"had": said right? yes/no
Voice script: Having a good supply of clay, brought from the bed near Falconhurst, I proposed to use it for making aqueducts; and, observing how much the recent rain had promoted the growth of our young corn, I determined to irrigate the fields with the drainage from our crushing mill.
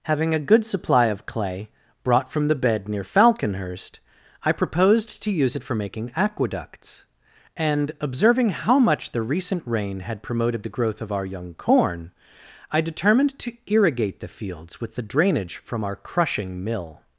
yes